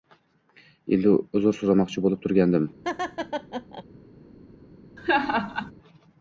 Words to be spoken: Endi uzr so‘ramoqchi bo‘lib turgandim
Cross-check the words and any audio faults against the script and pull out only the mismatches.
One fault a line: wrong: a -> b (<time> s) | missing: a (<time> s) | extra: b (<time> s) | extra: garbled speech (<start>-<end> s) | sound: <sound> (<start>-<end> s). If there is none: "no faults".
sound: laugh (2.8-3.8 s)
sound: laugh (5.0-5.7 s)